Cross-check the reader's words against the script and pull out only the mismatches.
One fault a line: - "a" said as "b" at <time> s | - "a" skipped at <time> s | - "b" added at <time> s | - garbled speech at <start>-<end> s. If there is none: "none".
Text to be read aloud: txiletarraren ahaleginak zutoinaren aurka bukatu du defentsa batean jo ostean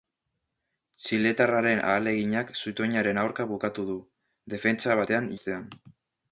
- "jo" skipped at 5.3 s